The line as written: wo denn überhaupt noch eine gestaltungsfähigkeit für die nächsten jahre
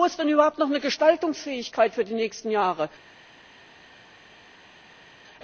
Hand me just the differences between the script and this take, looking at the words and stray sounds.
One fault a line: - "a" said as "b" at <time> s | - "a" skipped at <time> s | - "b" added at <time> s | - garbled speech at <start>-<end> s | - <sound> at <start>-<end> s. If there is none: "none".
- "ist" added at 0.1 s